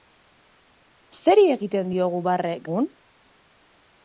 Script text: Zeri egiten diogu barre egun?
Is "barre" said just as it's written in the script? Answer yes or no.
yes